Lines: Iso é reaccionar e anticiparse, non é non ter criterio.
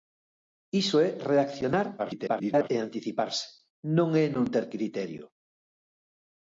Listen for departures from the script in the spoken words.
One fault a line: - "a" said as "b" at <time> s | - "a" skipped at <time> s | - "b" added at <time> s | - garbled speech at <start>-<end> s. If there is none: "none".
- garbled speech at 2.0-2.7 s